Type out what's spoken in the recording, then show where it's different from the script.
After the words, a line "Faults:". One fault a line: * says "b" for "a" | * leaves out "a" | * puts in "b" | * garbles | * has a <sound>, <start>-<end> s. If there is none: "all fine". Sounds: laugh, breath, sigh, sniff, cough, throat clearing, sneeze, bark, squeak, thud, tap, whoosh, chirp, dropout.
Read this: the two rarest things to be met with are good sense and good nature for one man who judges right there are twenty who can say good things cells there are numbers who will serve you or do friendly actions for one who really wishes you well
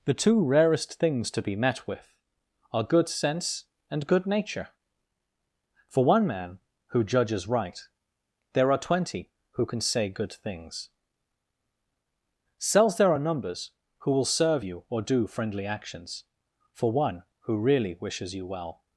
the two rarest things to be met with are good sense and good nature for one man who judges right there are twenty who can say good things cells there are numbers who will serve you or do friendly actions for one who really wishes you well
Faults:
all fine